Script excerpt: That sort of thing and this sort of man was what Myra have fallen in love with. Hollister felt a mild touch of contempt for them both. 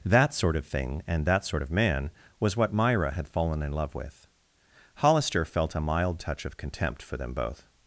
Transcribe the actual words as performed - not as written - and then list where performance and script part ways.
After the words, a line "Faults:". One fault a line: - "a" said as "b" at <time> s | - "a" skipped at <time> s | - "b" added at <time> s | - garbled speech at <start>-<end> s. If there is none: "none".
That sort of thing and that sort of man was what Myra had fallen in love with. Hollister felt a mild touch of contempt for them both.
Faults:
- "this" said as "that" at 1.2 s
- "have" said as "had" at 3.1 s